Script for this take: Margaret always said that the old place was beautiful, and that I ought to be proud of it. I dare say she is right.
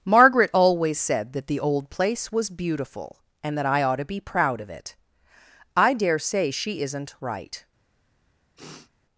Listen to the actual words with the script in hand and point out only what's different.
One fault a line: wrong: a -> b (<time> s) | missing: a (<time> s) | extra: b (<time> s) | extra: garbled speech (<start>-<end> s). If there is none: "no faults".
wrong: is -> isn't (6.8 s)